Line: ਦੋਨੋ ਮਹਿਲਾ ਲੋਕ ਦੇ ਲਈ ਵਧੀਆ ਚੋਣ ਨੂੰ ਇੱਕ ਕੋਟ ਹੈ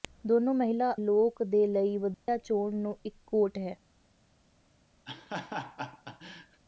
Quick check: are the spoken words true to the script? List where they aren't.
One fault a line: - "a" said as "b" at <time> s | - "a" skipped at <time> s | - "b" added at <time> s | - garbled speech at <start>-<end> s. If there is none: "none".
none